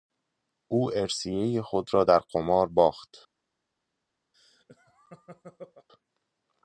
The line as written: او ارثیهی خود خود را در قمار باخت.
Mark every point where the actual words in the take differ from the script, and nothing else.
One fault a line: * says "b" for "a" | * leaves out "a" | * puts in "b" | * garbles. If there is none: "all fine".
* leaves out "خود"